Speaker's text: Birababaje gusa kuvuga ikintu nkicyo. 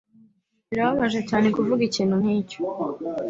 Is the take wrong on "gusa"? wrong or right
wrong